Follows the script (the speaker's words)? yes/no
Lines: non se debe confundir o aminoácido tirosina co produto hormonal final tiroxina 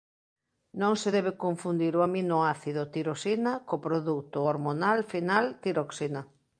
yes